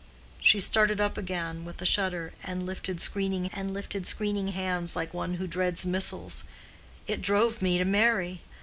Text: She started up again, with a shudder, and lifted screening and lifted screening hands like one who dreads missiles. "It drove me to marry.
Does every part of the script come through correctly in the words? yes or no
yes